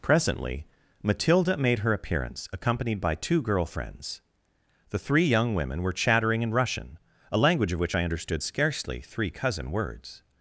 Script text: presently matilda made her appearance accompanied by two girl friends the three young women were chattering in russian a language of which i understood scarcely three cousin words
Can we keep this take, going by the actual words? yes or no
yes